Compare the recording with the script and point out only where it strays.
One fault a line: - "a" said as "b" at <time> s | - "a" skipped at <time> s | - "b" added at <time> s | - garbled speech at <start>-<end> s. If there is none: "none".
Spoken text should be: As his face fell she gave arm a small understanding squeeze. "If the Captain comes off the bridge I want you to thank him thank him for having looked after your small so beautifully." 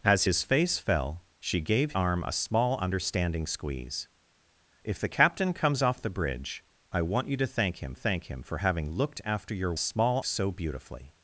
none